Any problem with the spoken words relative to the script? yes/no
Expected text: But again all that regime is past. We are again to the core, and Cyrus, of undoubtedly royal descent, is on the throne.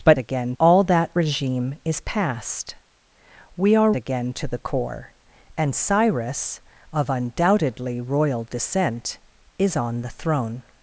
no